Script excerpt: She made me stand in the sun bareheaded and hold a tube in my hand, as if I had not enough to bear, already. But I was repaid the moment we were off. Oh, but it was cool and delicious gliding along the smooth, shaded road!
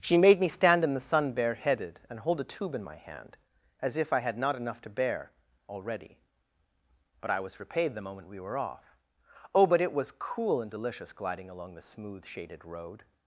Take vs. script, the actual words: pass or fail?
pass